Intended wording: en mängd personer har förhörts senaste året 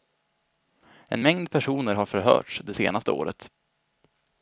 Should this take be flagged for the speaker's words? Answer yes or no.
yes